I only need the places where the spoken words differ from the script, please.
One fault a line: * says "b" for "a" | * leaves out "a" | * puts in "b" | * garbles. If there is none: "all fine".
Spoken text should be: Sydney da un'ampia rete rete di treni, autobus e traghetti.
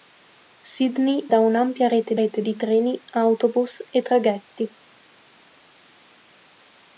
all fine